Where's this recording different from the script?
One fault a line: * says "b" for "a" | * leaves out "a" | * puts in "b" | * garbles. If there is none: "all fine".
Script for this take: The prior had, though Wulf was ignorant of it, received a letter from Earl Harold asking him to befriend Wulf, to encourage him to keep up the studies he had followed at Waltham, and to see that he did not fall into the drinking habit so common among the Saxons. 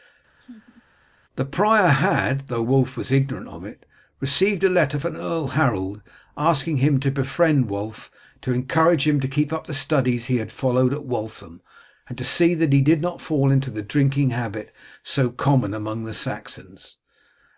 all fine